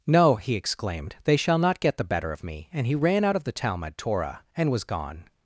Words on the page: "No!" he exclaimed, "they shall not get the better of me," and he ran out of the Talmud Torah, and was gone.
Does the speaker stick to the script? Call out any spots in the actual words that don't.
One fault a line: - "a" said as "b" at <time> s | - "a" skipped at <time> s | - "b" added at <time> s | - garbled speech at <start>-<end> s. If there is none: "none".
none